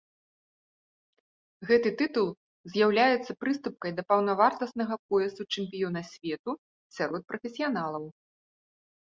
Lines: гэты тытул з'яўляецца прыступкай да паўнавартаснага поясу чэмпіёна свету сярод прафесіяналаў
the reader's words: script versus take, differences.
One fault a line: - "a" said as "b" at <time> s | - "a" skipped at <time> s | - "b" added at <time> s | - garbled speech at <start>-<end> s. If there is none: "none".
none